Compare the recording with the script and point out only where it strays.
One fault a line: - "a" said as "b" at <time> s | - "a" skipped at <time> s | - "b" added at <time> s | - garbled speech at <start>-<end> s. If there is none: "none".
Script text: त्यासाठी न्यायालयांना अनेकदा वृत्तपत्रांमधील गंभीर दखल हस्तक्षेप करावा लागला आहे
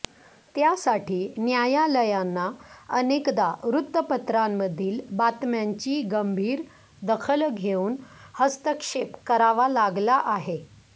- "बातम्यांची" added at 5.2 s
- "घेऊन" added at 7.5 s